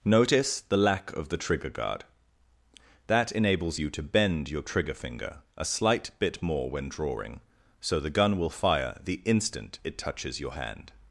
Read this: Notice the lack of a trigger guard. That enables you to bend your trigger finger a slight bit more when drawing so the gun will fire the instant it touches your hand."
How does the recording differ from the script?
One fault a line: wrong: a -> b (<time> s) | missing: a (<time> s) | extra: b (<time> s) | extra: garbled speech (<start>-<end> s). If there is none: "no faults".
wrong: a -> the (1.3 s)